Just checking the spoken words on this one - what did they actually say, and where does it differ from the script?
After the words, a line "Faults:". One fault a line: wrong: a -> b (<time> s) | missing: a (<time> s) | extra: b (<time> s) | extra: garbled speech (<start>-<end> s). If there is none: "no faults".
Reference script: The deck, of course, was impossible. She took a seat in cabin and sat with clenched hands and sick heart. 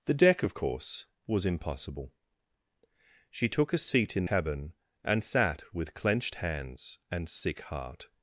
The deck, of course, was impossible. She took a seat in cabin and sat with clenched hands and sick heart.
Faults:
no faults